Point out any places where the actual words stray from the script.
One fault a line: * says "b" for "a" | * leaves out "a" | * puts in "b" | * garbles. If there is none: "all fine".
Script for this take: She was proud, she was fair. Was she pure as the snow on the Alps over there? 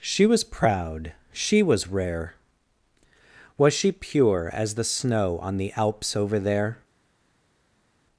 * says "rare" for "fair"